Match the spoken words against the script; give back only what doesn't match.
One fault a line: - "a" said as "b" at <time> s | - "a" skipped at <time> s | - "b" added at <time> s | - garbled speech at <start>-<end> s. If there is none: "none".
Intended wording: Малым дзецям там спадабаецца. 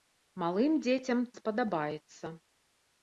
- "там" skipped at 1.2 s